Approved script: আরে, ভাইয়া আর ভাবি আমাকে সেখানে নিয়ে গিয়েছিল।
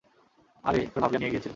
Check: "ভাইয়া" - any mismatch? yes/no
yes